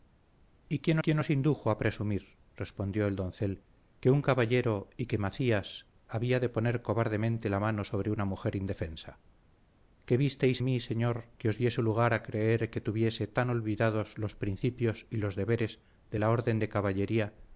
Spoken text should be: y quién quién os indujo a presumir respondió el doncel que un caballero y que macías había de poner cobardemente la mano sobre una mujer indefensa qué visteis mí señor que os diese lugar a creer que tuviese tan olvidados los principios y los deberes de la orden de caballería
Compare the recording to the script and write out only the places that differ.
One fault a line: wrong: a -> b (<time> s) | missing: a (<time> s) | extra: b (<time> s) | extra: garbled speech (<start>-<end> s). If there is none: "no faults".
no faults